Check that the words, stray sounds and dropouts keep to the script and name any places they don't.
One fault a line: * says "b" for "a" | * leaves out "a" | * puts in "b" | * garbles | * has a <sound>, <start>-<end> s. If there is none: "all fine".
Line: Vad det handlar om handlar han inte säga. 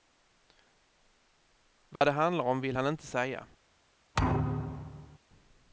* has a dropout, 2.0-2.0 s
* says "vill" for "handlar"
* has a thud, 4.1-5.2 s